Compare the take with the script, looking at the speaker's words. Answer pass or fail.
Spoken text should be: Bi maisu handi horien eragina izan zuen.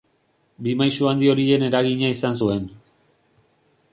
pass